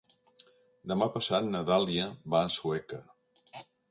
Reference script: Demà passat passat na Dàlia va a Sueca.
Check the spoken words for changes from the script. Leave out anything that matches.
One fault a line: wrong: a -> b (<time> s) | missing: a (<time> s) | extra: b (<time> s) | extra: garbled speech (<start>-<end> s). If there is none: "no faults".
missing: passat (1.5 s)